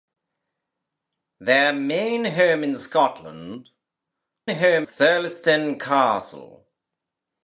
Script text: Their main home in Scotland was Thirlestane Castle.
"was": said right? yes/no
no